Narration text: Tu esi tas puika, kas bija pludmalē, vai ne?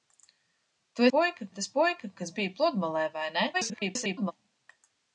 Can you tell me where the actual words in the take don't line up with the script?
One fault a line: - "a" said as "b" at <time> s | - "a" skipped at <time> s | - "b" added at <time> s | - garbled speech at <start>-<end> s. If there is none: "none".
- "esi" said as "puika" at 1.1 s
- garbled speech at 3.5-4.3 s